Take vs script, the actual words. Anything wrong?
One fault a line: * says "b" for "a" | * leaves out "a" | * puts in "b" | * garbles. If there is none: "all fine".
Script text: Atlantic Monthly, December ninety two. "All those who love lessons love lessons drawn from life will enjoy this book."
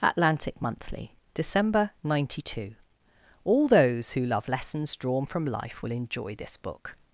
* leaves out "love lessons"